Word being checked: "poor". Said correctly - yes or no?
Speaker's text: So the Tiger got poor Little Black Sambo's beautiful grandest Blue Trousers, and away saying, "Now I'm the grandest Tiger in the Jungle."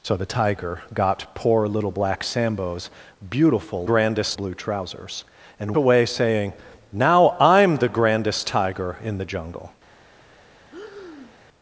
yes